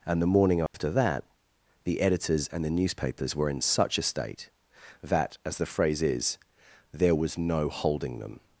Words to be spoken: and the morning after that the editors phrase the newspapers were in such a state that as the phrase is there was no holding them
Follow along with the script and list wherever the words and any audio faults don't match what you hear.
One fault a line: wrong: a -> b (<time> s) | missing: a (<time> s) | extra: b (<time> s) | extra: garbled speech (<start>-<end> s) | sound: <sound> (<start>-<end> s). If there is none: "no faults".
sound: dropout (0.7-0.7 s)
wrong: phrase -> and (2.5 s)